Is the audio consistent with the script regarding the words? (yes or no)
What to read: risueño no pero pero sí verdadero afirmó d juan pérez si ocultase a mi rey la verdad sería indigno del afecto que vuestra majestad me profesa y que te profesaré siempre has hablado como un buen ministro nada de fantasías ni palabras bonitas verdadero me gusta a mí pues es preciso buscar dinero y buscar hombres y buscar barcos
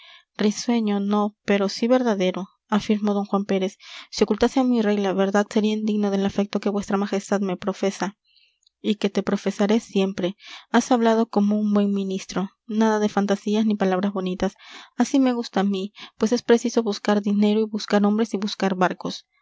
no